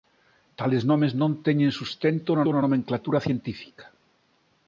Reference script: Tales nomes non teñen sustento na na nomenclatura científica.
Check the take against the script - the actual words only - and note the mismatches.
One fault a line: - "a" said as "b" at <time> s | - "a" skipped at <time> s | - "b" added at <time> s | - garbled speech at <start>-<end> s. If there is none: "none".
none